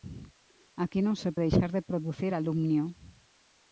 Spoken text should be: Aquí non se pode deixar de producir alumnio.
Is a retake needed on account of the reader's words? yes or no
yes